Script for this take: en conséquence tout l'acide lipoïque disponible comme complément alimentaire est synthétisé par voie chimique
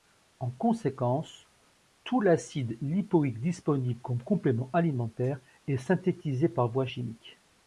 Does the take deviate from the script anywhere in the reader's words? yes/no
no